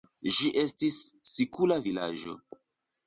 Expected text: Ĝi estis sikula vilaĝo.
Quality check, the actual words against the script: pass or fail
pass